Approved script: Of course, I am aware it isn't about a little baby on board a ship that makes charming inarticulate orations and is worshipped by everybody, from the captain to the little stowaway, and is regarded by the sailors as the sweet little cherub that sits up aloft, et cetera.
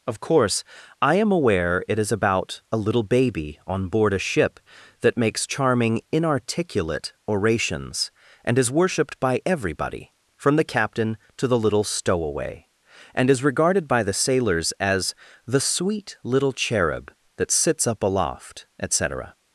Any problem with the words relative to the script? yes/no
yes